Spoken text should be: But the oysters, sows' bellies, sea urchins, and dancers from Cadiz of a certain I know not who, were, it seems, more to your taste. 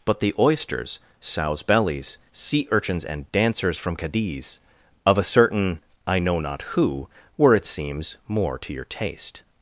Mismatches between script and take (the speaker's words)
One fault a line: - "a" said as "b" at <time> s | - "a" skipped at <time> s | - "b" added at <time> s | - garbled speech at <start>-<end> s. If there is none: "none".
none